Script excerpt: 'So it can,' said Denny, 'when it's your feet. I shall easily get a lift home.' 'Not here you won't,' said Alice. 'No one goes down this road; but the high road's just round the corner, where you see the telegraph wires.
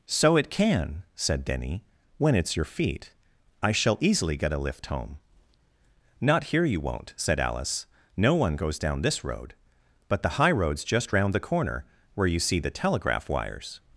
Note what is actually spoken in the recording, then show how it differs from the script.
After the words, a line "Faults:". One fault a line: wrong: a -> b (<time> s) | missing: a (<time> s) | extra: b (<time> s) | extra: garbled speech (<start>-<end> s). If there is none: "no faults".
'So it can,' said Denny, 'when it's your feet. I shall easily get a lift home.' 'Not here you won't,' said Alice. 'No one goes down this road; but the high road's just round the corner, where you see the telegraph wires.
Faults:
no faults